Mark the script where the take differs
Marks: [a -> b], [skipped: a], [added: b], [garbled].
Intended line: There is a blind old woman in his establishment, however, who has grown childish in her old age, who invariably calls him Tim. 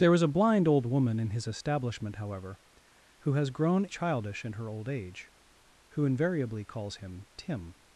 There is a blind old woman in his establishment, however, who has grown childish in her old age, who invariably calls him Tim.